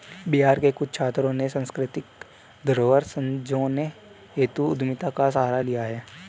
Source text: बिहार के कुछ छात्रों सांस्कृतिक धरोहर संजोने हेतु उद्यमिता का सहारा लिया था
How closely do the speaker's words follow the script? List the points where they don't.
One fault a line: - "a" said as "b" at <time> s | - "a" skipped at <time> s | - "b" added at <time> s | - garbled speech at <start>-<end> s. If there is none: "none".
- "ने" added at 1.3 s
- "था" said as "है" at 5.8 s